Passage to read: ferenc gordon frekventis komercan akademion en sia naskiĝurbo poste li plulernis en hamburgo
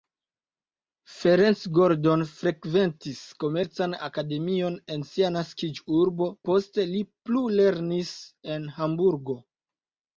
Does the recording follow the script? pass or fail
pass